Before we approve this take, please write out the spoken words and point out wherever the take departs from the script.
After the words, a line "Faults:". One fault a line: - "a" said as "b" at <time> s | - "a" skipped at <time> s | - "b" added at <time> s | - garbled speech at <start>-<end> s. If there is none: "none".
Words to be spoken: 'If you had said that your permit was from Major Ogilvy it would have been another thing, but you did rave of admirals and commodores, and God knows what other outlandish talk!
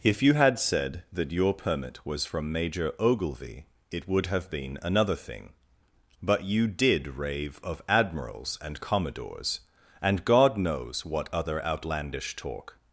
'If you had said that your permit was from Major Ogilvy it would have been another thing, but you did rave of admirals and commodores, and God knows what other outlandish talk!
Faults:
none